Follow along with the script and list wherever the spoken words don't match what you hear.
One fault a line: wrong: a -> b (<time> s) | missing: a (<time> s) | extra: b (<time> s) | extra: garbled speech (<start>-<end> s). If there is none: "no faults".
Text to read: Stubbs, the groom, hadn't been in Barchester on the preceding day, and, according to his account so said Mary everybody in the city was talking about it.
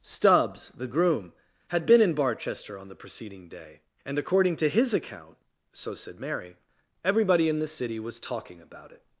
wrong: hadn't -> had (1.7 s)